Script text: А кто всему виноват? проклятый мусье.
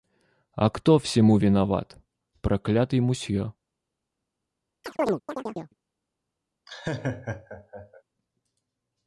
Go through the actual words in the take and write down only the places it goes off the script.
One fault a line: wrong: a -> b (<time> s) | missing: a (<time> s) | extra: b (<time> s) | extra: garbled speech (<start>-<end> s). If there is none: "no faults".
no faults